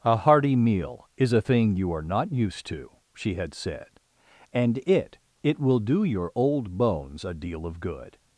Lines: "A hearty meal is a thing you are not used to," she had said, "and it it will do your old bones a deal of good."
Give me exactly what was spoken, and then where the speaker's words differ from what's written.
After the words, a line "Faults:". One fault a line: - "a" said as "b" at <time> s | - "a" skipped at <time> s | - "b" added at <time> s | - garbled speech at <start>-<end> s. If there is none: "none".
"A hearty meal is a thing you are not used to," she had said, "and it it will do your old bones a deal of good."
Faults:
none